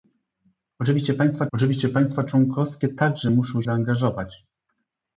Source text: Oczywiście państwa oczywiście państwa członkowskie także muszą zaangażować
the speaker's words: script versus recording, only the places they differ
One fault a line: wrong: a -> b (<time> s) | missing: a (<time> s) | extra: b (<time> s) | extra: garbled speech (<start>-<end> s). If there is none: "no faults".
no faults